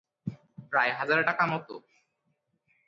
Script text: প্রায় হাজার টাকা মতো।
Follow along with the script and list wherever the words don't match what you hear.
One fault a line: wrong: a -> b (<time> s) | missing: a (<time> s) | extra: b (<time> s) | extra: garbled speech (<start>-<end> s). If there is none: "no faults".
no faults